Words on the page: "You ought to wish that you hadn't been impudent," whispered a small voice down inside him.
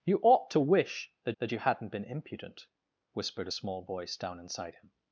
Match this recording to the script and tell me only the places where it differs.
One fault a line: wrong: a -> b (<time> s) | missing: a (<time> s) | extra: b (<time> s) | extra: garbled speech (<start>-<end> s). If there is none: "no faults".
extra: that (1.4 s)